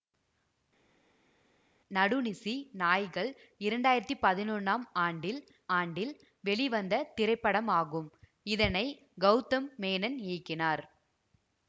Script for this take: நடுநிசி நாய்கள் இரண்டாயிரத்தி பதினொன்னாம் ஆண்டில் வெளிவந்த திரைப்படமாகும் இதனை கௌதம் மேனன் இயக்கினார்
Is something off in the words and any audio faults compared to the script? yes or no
yes